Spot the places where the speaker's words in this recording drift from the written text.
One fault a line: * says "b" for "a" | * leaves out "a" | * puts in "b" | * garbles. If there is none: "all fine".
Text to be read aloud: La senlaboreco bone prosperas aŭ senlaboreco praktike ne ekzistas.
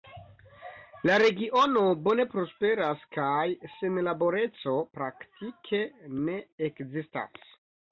* says "regiono" for "senlaboreco"
* says "kaj" for "aŭ"